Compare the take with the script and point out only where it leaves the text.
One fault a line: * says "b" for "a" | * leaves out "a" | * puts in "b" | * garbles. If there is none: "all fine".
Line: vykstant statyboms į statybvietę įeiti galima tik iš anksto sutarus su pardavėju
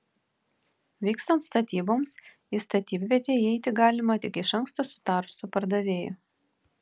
all fine